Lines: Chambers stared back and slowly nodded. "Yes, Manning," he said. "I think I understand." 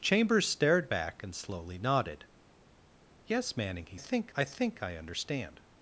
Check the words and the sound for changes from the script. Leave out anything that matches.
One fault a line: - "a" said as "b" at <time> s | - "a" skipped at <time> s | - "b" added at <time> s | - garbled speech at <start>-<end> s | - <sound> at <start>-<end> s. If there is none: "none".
- "said" said as "think" at 4.0 s